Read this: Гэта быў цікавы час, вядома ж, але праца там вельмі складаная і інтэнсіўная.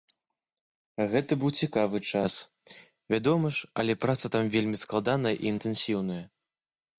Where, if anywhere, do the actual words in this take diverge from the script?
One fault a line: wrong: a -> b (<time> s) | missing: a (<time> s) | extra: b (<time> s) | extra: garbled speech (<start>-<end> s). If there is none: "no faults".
no faults